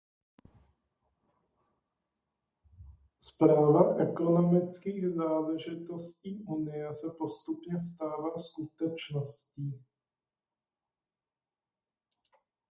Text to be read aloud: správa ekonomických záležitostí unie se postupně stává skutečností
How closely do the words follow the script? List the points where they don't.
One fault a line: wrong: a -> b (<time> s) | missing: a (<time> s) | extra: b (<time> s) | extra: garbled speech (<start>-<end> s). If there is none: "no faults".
no faults